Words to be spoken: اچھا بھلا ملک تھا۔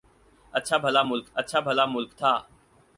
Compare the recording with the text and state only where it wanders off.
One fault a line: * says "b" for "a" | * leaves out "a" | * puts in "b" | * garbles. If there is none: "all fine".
* puts in "اچھا بھلا ملک"